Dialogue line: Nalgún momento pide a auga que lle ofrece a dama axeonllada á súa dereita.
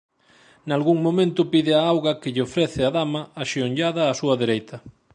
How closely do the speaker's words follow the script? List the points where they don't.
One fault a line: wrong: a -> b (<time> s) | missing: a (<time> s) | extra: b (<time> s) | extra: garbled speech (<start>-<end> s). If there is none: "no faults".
no faults